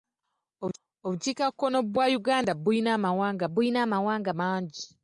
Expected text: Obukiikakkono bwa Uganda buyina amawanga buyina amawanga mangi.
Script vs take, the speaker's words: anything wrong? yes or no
no